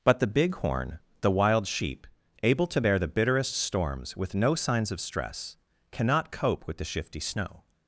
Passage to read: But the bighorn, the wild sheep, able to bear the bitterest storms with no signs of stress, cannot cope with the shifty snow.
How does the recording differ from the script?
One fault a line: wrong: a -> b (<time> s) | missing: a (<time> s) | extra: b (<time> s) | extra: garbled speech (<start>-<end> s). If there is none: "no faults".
no faults